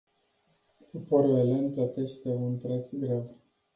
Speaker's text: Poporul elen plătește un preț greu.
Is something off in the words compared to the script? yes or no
no